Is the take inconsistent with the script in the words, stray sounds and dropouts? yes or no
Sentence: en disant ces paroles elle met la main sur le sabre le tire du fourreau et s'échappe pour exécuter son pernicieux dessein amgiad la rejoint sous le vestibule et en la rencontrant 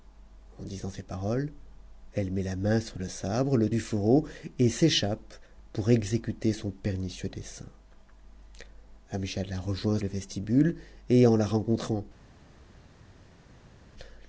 yes